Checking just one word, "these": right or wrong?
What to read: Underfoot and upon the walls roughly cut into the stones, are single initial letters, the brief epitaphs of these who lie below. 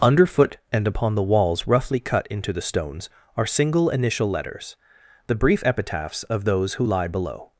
wrong